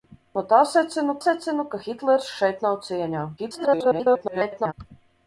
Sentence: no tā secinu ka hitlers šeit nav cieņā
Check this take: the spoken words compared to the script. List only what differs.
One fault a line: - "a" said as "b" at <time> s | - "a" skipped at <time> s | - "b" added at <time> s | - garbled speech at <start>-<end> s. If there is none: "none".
- "secinu" added at 1.2 s
- garbled speech at 3.4-4.7 s